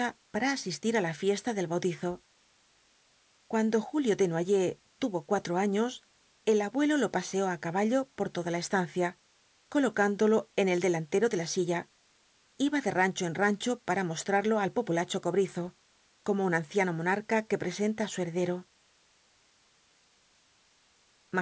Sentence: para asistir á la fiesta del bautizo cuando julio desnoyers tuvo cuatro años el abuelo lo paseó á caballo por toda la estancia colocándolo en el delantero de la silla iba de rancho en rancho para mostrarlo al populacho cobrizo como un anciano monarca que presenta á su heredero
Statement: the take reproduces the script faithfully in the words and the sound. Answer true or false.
true